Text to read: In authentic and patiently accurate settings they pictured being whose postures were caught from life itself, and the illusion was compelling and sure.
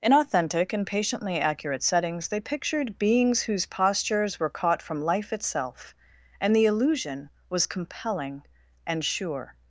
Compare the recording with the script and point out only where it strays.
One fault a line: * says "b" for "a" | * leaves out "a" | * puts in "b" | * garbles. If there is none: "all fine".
* says "beings" for "being"